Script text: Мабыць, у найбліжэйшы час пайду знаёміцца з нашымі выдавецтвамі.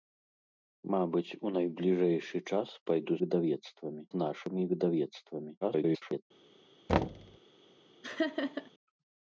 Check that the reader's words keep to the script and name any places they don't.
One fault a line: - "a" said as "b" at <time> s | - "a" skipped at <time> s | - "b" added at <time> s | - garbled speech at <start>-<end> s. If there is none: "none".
- "знаёміцца" said as "выдавецтвамі" at 3.2 s
- garbled speech at 5.6-6.2 s